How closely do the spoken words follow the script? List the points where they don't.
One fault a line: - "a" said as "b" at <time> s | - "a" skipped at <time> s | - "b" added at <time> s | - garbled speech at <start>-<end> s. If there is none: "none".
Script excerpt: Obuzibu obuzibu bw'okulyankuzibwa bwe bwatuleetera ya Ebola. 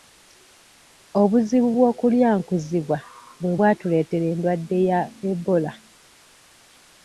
- "obuzibu" skipped at 1.7 s
- "endwadde" added at 4.3 s